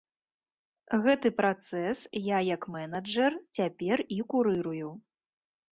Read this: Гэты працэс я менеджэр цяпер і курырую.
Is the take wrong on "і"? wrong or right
right